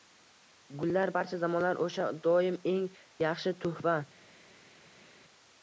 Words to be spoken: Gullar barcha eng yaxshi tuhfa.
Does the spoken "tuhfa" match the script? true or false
true